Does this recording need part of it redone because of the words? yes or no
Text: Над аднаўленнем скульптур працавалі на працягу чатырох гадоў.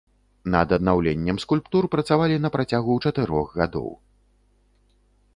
no